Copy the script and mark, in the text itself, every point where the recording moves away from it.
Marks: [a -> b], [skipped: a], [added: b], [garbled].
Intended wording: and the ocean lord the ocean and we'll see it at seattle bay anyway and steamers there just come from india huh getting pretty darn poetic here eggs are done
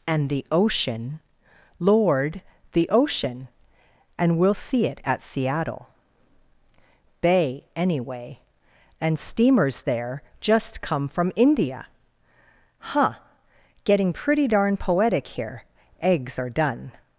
and the ocean lord the ocean and we'll see it at seattle bay anyway and steamers there just come from india huh getting pretty darn poetic here eggs are done